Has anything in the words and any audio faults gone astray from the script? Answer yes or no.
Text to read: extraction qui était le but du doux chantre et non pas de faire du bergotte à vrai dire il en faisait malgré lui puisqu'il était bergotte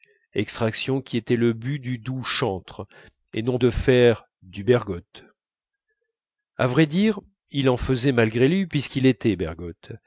yes